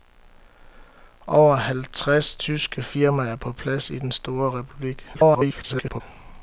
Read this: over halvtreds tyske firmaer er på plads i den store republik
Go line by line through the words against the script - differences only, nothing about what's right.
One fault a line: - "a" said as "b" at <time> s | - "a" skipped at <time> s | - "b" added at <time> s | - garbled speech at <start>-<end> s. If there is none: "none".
- garbled speech at 5.1-6.0 s